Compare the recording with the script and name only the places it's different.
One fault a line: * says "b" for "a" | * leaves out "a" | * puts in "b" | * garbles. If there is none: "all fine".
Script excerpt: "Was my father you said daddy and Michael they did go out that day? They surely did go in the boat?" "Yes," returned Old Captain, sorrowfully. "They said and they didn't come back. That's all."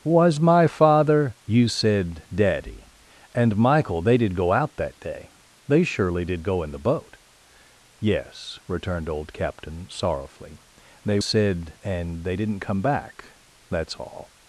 all fine